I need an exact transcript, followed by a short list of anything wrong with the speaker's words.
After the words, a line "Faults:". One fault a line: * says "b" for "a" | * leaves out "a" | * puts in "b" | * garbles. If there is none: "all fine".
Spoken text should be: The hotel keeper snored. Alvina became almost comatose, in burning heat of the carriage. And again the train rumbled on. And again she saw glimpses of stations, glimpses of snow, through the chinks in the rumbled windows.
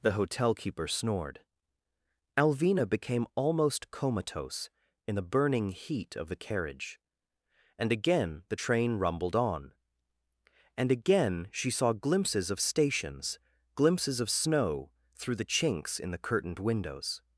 The hotel keeper snored. Alvina became almost comatose, in the burning heat of the carriage. And again the train rumbled on. And again she saw glimpses of stations, glimpses of snow, through the chinks in the curtained windows.
Faults:
* puts in "the"
* says "curtained" for "rumbled"